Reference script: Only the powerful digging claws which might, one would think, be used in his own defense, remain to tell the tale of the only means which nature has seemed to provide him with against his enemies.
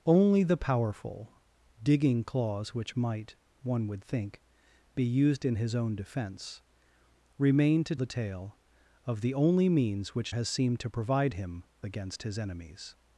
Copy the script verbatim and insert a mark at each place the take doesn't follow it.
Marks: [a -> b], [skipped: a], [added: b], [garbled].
Only the powerful digging claws which might, one would think, be used in his own defense, remain to [skipped: tell] the tale of the only means which [skipped: nature] has seemed to provide him [skipped: with] against his enemies.